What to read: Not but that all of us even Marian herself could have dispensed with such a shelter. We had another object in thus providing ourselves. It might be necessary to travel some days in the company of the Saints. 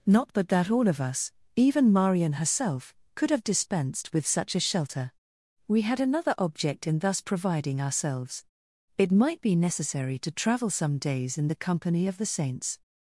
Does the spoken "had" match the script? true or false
true